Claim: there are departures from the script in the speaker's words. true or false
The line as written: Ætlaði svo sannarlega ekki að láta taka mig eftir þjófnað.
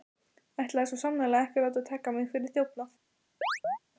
true